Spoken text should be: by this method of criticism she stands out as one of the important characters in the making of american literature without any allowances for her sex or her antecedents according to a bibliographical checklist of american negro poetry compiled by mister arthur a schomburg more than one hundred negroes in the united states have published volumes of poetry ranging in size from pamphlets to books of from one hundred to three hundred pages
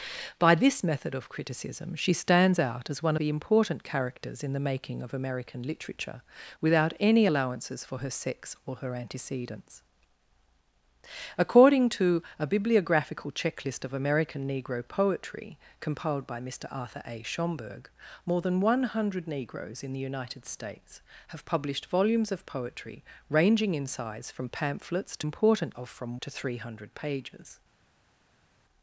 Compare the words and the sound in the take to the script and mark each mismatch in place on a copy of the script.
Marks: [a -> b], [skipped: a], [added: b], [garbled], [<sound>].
by this method of criticism she stands out as one [skipped: of] the important characters in the making of american literature without any allowances for her sex or her antecedents according to a bibliographical checklist of american negro poetry compiled by mister arthur a schomburg more than one hundred negroes in the united states have published volumes of poetry ranging in size from pamphlets to [books -> important] of from [skipped: one hundred] to three hundred pages